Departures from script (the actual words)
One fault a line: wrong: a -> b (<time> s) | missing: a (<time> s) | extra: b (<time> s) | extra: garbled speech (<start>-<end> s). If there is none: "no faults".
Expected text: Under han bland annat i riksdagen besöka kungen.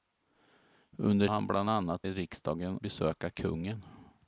no faults